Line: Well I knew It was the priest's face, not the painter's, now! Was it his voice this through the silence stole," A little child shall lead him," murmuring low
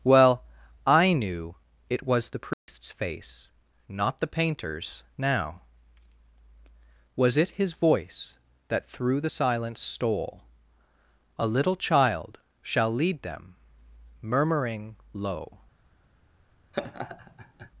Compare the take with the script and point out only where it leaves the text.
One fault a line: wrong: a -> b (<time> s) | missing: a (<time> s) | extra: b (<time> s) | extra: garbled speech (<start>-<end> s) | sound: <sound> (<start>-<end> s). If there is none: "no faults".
sound: dropout (2.5-2.7 s)
wrong: this -> that (8.7 s)
wrong: him -> them (13.2 s)
sound: laugh (16.7-17.7 s)